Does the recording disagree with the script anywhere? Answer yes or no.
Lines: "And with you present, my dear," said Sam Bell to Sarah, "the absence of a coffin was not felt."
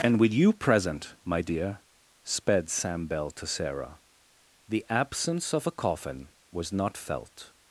yes